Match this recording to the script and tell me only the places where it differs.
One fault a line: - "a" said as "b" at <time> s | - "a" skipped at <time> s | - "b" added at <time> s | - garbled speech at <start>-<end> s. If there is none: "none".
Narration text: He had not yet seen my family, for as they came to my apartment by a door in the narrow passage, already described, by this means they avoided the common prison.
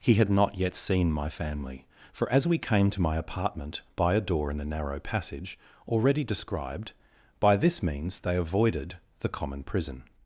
- "they" said as "we" at 2.5 s